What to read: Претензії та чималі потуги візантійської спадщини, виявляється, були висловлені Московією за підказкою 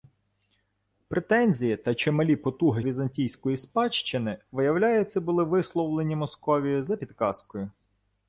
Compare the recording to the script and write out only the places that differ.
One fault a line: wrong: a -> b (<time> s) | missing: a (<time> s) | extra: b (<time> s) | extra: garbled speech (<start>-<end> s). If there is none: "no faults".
no faults